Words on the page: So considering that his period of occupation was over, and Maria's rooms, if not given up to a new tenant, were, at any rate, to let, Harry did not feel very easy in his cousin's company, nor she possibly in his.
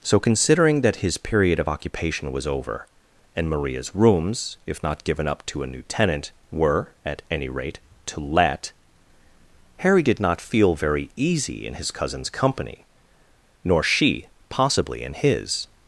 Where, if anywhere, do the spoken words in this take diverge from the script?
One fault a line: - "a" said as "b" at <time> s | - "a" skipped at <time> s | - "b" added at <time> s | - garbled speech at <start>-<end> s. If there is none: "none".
none